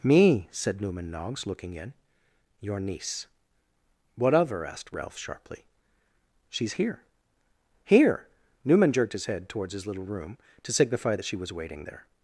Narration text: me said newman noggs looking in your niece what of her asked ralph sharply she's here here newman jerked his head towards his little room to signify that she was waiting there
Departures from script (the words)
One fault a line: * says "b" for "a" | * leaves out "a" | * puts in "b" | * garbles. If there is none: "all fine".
all fine